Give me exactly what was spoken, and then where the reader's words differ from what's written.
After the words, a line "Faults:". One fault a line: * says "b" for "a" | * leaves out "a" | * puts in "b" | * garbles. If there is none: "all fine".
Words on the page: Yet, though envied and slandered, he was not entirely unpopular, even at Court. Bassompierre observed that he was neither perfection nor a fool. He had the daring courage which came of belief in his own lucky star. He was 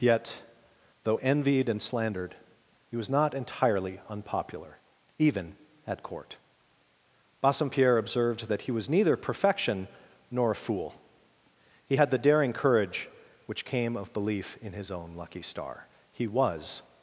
Yet, though envied and slandered, he was not entirely unpopular, even at Court. Bassompierre observed that he was neither perfection nor a fool. He had the daring courage which came of belief in his own lucky star. He was
Faults:
all fine